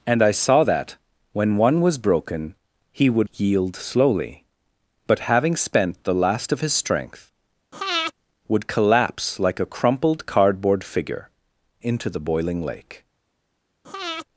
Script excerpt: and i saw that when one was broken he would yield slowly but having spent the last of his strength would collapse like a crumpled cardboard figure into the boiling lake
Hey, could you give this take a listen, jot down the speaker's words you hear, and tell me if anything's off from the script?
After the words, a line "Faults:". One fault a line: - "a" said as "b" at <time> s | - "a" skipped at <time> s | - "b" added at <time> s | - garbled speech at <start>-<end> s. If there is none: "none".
and i saw that when one was broken he would yield slowly but having spent the last of his strength would collapse like a crumpled cardboard figure into the boiling lake
Faults:
none